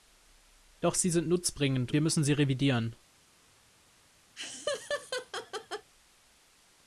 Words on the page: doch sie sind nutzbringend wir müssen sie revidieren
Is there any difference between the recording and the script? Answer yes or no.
no